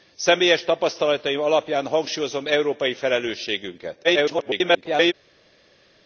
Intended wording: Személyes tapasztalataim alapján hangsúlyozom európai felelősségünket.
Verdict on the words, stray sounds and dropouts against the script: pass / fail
fail